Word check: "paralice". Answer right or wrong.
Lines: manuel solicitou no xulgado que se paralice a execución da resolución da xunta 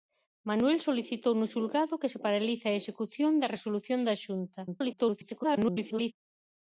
right